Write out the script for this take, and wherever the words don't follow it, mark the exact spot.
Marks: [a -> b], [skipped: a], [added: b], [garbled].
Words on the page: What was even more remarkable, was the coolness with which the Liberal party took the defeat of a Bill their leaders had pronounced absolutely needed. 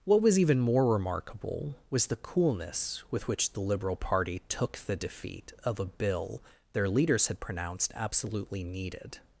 What was even more remarkable, was the coolness with which the Liberal party took the defeat of a Bill their leaders had pronounced absolutely needed.